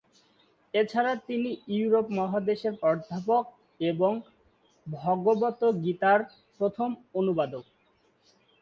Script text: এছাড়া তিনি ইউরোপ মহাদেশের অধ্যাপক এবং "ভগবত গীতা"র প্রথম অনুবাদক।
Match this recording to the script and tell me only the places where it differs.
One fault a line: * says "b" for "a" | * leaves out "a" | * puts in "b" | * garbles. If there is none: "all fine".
all fine